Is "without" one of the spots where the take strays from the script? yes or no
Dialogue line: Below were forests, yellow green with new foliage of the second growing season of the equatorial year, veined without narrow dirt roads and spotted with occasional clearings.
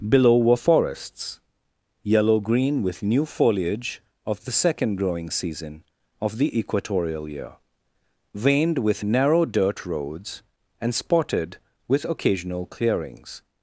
yes